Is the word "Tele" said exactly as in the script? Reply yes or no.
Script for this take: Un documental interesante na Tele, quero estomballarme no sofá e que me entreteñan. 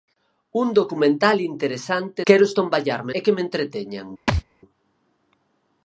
no